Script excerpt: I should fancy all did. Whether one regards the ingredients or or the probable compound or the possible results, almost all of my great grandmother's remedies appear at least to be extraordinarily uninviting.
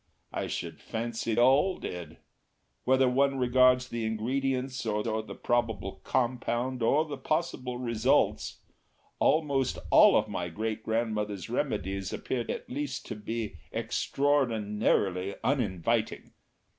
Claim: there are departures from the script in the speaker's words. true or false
false